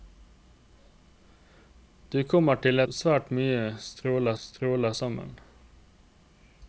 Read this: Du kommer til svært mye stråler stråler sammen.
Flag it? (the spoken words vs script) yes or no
no